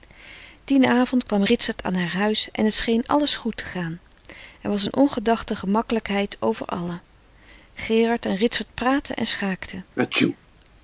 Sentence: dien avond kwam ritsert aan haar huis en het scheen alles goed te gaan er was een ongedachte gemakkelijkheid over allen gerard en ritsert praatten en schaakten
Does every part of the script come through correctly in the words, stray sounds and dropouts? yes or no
no